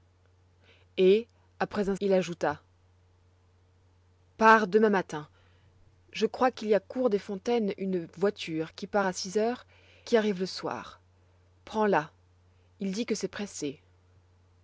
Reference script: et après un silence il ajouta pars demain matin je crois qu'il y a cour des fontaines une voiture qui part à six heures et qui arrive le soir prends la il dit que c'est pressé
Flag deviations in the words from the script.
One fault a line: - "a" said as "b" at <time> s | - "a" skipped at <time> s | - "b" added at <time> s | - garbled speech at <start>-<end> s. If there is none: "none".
- "silence" skipped at 1.9 s
- "et" skipped at 9.7 s